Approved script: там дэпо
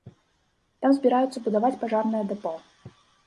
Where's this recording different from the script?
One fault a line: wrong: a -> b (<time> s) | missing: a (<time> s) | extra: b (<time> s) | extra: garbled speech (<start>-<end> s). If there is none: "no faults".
extra: збіраюцца будаваць пажарнае (1.0 s)